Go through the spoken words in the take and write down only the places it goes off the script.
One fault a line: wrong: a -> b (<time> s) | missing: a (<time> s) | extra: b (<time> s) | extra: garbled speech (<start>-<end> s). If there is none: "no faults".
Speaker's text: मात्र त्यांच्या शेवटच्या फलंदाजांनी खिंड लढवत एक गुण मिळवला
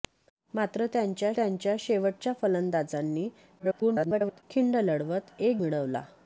extra: त्यांच्या (1.4 s)
extra: garbled speech (3.6-4.4 s)
missing: गुण (5.6 s)